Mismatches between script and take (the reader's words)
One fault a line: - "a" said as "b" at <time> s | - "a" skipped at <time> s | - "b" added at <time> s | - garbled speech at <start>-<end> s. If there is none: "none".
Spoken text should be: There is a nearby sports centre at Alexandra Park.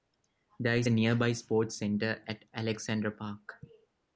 none